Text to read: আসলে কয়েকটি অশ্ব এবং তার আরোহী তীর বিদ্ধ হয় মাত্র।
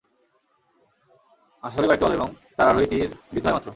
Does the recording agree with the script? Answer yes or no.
no